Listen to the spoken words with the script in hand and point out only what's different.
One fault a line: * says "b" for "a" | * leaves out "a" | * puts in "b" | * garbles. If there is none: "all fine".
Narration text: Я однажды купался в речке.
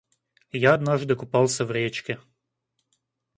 all fine